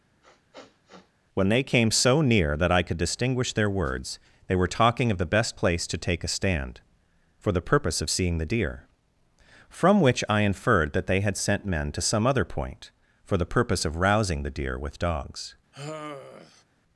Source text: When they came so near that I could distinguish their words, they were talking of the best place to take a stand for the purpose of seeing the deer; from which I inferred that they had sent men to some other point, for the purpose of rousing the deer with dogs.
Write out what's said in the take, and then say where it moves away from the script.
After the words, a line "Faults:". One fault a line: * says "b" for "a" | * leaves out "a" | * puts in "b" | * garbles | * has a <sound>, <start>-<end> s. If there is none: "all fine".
When they came so near that I could distinguish their words, they were talking of the best place to take a stand for the purpose of seeing the deer; from which I inferred that they had sent men to some other point, for the purpose of rousing the deer with dogs.
Faults:
* has a sniff, 0.2-1.1 s
* has a sigh, 15.7-16.6 s